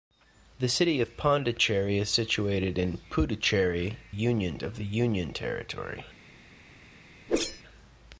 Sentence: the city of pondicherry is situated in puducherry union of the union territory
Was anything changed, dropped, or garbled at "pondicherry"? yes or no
no